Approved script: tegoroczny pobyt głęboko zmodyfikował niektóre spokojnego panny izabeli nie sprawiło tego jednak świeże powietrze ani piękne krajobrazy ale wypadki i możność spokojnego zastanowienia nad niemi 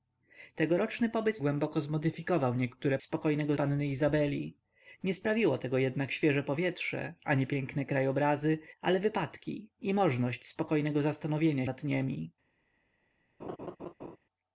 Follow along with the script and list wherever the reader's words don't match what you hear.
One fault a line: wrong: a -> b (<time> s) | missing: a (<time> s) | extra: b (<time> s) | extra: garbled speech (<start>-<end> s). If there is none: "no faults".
no faults